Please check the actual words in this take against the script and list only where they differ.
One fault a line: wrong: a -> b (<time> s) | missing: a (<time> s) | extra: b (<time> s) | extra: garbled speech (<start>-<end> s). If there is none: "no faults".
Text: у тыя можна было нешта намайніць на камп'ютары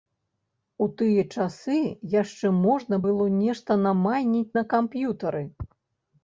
extra: часы яшчэ (1.4 s)